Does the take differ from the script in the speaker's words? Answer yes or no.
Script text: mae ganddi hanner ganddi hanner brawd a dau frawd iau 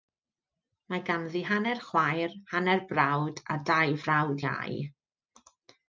yes